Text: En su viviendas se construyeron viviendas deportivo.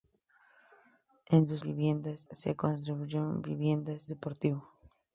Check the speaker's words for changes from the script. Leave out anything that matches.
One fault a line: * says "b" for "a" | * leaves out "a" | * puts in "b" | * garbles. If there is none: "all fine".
all fine